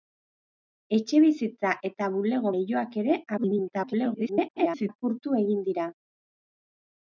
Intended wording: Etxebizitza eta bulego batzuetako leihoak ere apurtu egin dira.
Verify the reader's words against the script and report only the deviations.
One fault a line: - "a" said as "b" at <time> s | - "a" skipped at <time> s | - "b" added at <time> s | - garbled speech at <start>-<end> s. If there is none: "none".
- "batzuetako" skipped at 2.5 s
- garbled speech at 3.4-4.9 s